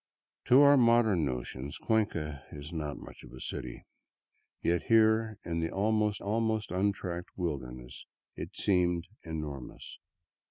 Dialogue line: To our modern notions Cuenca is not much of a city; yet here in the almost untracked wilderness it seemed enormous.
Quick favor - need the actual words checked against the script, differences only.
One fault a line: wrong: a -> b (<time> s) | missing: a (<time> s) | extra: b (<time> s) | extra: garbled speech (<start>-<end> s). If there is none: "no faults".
extra: almost (6.2 s)